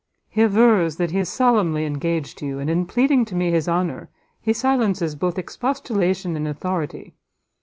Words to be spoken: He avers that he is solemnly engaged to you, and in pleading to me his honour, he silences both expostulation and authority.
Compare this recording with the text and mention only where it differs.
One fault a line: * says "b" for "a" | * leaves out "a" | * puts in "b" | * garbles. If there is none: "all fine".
all fine